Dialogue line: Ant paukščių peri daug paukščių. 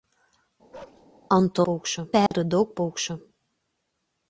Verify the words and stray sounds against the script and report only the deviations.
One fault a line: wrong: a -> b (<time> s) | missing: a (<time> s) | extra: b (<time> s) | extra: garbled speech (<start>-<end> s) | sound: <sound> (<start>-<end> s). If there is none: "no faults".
sound: bark (0.7-1.1 s)
sound: dropout (2.3-2.3 s)